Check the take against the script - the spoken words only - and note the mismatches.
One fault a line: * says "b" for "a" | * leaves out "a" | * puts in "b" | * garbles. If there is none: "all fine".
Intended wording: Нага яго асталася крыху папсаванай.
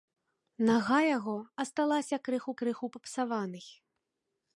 * puts in "крыху"